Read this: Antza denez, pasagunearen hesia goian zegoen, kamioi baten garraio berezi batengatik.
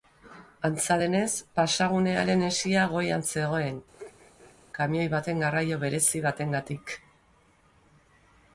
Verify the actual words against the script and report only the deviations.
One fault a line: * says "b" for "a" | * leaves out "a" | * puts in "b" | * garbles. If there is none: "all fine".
all fine